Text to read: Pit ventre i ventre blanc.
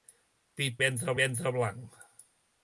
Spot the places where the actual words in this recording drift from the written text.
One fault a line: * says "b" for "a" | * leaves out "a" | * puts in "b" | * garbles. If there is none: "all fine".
all fine